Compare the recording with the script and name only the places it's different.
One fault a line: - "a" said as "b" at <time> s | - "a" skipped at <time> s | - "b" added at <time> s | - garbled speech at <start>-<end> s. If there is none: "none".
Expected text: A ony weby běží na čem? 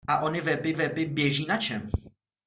- "weby" added at 0.7 s